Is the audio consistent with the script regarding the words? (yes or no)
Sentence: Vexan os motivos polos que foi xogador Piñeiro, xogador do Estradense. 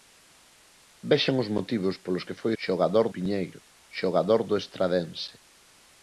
yes